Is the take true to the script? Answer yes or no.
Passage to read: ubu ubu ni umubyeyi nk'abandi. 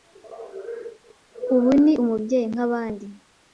no